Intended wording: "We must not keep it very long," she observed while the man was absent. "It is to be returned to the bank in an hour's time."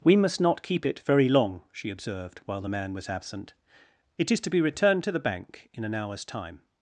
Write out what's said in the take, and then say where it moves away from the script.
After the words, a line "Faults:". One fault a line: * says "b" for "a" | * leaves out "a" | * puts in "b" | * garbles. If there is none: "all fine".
"We must not keep it very long," she observed while the man was absent. "It is to be returned to the bank in an hour's time."
Faults:
all fine